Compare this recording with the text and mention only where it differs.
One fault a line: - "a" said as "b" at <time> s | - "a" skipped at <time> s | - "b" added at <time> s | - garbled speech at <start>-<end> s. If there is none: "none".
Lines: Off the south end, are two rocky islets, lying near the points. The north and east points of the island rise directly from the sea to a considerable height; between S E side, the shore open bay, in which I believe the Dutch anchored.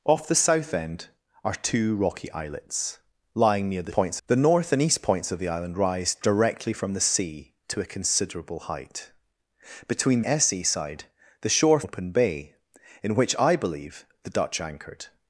none